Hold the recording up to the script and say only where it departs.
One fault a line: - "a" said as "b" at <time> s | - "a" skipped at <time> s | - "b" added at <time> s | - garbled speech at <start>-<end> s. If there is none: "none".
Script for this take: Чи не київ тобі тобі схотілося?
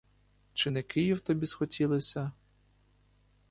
- "тобі" skipped at 1.5 s